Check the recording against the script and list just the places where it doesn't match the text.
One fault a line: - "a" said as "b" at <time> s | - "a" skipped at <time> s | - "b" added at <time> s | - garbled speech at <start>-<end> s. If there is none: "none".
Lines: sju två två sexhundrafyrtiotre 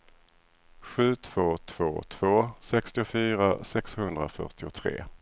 - "två sextiofyra" added at 2.1 s